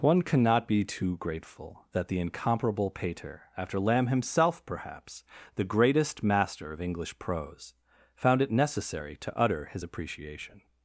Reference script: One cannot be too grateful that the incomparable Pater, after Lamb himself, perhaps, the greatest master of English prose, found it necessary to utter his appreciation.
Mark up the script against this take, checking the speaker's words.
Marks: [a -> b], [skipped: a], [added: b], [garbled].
One cannot be too grateful that the incomparable Pater, after Lamb himself, perhaps, the greatest master of English prose, found it necessary to utter his appreciation.